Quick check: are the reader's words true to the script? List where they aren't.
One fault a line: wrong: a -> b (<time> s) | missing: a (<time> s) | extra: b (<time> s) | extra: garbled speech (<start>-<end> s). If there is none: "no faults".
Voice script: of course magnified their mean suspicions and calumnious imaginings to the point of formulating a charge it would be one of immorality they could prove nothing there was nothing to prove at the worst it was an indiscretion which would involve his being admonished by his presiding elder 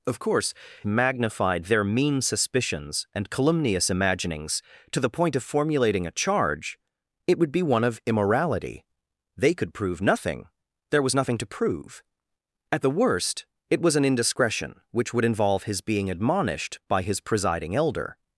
no faults